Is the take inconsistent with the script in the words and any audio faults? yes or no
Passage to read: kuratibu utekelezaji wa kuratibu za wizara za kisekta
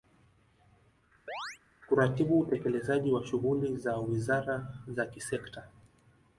yes